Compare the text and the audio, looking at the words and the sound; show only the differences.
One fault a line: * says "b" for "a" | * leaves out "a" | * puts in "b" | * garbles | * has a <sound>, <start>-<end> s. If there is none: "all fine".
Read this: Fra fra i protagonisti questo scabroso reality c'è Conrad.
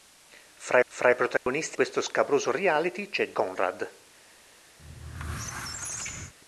* has a dropout, 1.4-1.5 s
* has a squeak, 4.8-6.3 s